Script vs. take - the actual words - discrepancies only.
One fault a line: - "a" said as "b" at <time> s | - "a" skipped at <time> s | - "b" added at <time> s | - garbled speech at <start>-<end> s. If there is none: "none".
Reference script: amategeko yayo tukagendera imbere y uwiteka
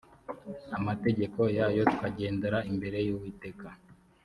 none